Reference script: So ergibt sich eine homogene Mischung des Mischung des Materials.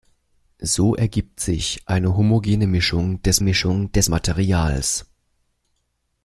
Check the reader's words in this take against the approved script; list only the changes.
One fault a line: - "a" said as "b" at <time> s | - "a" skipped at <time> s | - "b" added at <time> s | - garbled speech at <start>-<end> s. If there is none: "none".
none